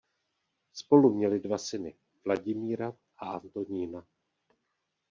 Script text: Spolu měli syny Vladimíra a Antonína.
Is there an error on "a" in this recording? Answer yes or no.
no